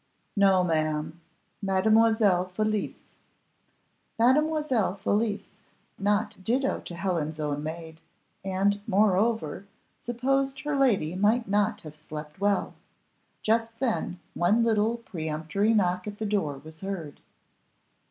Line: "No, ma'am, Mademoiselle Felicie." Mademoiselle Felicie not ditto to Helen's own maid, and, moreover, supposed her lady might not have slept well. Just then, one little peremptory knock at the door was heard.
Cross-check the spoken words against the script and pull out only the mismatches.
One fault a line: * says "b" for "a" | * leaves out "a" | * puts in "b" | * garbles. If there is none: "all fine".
all fine